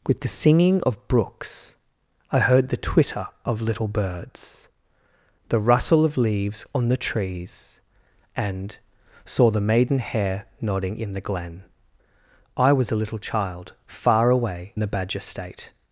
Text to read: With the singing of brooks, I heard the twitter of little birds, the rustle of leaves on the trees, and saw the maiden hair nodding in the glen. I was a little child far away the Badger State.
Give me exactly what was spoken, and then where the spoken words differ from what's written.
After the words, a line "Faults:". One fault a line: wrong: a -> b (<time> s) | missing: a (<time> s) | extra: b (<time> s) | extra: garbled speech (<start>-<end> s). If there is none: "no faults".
With the singing of brooks, I heard the twitter of little birds, the rustle of leaves on the trees, and saw the maiden hair nodding in the glen. I was a little child far away the Badger State.
Faults:
no faults